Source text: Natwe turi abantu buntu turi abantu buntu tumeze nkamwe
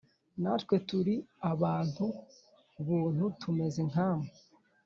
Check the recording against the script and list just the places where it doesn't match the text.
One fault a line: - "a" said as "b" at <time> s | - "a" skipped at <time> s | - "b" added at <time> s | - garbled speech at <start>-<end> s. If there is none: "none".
- "turi abantu buntu" skipped at 3.2 s